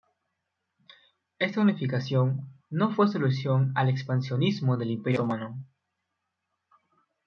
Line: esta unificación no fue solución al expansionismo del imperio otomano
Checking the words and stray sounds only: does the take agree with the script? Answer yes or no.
yes